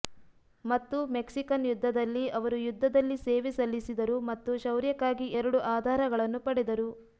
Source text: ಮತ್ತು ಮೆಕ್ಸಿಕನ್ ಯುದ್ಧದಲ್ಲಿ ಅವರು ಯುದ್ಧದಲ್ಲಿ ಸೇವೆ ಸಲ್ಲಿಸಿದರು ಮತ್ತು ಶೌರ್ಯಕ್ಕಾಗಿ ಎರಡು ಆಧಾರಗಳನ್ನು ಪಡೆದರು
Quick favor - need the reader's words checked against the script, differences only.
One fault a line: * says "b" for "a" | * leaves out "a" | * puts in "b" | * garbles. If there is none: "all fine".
all fine